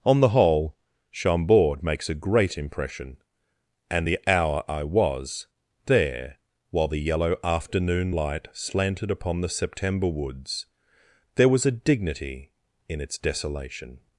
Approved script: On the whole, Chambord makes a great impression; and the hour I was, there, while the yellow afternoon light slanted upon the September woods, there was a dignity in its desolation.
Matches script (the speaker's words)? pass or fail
pass